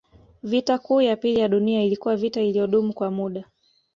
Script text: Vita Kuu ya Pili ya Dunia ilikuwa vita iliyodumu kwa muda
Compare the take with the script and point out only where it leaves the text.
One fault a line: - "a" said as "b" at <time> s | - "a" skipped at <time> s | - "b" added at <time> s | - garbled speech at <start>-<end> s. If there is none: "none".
none